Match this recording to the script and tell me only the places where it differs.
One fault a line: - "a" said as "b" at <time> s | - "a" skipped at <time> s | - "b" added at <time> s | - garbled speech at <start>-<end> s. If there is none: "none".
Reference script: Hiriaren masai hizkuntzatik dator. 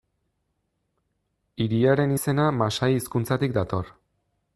- "izena" added at 2.1 s